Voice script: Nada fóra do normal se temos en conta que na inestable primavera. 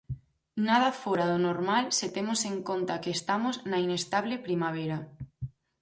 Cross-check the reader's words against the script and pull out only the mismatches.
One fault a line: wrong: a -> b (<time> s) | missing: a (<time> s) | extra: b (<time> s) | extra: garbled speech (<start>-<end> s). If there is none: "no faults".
extra: estamos (3.2 s)